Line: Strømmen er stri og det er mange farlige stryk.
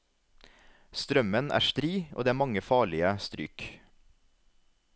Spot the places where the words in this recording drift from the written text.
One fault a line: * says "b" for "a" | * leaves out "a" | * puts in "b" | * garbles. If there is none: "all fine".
all fine